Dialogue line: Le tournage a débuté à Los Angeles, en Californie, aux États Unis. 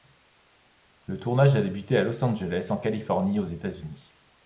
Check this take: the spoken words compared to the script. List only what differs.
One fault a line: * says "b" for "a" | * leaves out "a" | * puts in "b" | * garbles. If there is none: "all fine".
all fine